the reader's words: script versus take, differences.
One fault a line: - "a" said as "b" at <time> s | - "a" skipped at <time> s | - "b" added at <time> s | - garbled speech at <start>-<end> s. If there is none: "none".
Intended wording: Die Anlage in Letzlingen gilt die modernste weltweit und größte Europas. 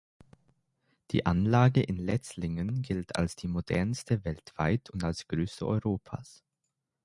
- "als" added at 3.2 s
- "als" added at 5.0 s